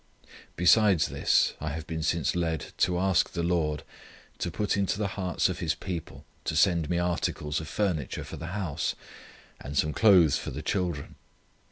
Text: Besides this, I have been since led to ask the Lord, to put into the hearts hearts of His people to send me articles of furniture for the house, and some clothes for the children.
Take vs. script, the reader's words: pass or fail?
fail